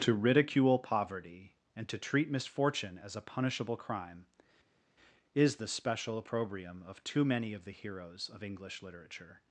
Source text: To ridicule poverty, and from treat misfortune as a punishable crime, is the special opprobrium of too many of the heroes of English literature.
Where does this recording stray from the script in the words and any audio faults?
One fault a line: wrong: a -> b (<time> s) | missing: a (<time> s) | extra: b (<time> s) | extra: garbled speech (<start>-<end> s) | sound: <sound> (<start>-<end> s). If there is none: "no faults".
wrong: from -> to (1.9 s)